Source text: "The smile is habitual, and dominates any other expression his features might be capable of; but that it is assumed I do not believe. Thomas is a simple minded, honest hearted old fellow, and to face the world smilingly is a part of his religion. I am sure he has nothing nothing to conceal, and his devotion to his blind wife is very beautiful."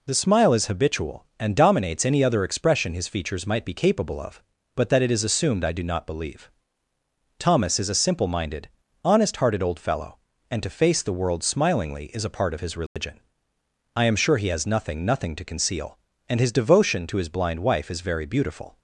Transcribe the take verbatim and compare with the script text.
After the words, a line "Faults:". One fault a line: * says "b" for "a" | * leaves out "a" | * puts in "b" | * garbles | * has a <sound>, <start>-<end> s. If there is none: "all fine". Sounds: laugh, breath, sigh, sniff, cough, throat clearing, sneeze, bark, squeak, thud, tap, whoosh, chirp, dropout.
"The smile is habitual, and dominates any other expression his features might be capable of; but that it is assumed I do not believe. Thomas is a simple minded, honest hearted old fellow, and to face the world smilingly is a part of his religion. I am sure he has nothing nothing to conceal, and his devotion to his blind wife is very beautiful."
Faults:
* has a dropout, 12.9-13.0 s